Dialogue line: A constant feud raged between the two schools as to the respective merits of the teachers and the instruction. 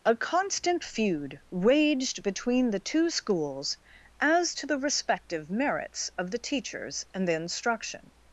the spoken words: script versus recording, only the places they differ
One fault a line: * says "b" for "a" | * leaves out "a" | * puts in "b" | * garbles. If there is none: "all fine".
all fine